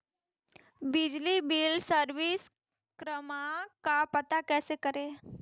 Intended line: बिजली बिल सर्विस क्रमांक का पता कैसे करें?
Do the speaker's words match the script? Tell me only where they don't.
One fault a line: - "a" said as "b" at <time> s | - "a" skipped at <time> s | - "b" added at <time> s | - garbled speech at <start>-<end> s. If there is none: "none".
none